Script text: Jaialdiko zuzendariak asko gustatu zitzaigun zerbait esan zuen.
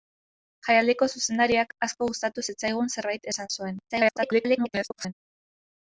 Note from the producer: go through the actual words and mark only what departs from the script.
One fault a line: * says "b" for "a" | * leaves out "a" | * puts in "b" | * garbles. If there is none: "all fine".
* garbles